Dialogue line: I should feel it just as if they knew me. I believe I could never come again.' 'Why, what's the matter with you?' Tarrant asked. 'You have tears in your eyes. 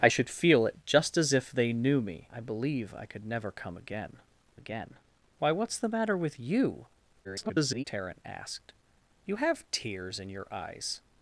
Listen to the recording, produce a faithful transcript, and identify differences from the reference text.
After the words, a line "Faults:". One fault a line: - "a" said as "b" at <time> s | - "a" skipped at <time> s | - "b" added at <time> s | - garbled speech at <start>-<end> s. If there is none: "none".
I should feel it just as if they knew me. I believe I could never come again again.' 'Why, what's the matter with you?' [garbled] Tarrant asked. 'You have tears in your eyes.
Faults:
- "again" added at 4.5 s
- garbled speech at 7.2-7.8 s